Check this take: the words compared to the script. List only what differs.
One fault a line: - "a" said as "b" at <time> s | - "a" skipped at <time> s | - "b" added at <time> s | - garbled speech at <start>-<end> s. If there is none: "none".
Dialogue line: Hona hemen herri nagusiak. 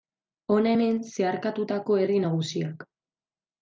- "zeharkatutako" added at 1.1 s